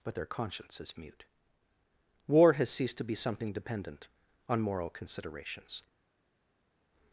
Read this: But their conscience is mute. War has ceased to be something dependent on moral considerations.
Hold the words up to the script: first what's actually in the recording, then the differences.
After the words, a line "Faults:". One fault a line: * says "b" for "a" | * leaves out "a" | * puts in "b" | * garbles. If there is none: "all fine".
But their conscience is mute. War has ceased to be something dependent on moral considerations.
Faults:
all fine